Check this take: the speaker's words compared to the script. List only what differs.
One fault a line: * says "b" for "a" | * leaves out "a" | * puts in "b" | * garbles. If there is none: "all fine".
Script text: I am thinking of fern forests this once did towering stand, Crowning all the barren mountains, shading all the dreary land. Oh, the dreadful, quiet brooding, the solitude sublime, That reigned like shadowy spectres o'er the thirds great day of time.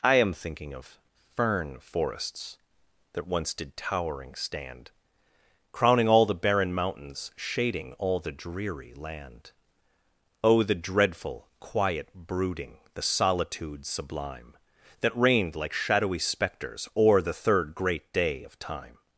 * says "that" for "this"
* says "third" for "thirds"